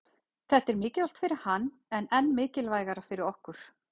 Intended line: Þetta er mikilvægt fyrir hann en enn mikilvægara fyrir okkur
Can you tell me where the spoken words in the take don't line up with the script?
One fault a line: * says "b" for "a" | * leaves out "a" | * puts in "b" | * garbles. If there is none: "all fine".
all fine